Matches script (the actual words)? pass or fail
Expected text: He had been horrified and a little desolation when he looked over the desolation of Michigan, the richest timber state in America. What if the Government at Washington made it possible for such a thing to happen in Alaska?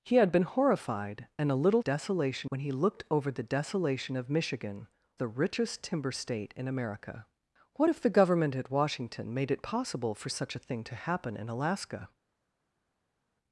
pass